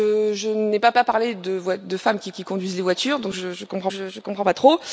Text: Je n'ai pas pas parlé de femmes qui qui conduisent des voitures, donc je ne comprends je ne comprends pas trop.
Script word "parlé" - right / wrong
right